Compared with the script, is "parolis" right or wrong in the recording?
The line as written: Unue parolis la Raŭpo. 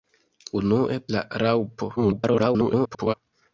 wrong